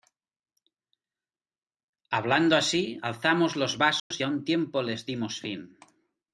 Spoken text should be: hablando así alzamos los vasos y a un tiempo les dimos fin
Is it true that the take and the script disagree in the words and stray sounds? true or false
true